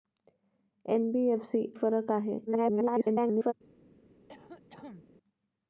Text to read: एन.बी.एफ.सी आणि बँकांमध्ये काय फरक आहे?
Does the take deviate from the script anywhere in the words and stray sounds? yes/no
yes